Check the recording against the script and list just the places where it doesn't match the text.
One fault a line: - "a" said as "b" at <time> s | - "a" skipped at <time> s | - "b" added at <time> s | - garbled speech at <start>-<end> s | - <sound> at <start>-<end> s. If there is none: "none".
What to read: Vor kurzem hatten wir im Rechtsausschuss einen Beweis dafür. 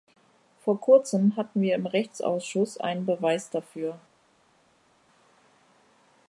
none